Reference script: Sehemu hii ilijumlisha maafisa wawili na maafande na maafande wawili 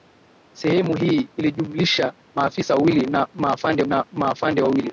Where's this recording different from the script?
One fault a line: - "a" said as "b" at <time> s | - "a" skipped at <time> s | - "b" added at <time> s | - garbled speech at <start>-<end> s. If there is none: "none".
none